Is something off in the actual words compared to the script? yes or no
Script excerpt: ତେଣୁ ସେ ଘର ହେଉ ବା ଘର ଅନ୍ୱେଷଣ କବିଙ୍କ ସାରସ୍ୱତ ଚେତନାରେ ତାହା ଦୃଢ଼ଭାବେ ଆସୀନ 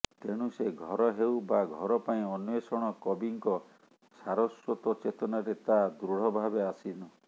yes